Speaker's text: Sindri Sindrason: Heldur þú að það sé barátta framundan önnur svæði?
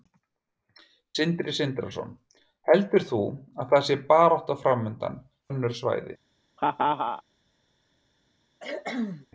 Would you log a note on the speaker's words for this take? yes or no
no